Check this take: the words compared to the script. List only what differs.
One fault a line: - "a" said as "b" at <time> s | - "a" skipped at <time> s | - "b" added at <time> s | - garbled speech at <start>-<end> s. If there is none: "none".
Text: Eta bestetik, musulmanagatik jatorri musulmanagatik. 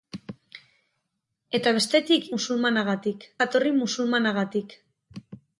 none